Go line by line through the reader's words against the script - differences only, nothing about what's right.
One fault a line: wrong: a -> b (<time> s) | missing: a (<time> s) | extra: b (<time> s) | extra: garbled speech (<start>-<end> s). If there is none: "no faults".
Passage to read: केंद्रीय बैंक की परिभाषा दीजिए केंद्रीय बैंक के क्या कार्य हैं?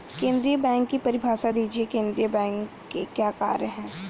no faults